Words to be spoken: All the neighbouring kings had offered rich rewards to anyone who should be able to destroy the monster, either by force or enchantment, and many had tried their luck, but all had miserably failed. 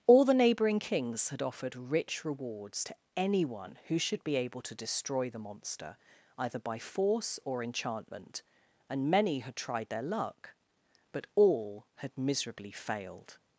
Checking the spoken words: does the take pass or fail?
pass